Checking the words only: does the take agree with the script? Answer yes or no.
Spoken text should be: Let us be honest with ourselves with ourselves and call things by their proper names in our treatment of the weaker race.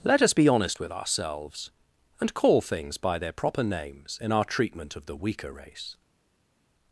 no